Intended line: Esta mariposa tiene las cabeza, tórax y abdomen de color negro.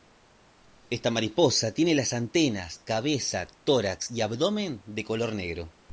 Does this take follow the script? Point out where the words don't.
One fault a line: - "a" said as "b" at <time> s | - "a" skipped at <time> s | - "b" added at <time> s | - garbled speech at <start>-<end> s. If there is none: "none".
- "antenas" added at 2.1 s